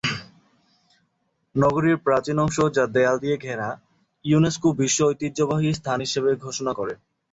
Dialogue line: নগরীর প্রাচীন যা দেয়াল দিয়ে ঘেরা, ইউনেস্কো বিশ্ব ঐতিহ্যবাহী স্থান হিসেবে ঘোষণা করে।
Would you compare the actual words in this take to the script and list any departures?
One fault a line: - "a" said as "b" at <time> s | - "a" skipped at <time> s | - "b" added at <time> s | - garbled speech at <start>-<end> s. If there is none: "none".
- "অংশ" added at 2.4 s